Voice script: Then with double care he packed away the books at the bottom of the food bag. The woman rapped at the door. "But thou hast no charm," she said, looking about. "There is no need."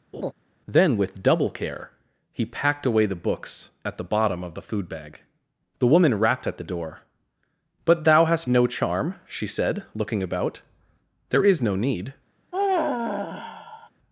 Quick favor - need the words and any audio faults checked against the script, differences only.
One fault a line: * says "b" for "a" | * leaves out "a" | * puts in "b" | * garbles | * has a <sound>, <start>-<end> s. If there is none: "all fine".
* has a laugh, 0.1-0.3 s
* has a sigh, 12.5-13.9 s